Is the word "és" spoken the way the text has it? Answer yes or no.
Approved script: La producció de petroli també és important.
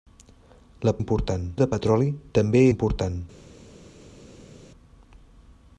no